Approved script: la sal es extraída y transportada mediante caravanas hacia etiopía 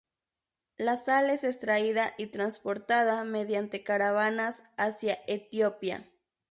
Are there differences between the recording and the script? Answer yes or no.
no